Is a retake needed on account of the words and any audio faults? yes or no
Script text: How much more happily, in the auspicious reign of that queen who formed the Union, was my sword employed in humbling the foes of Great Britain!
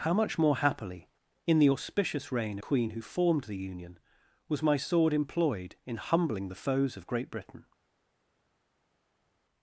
yes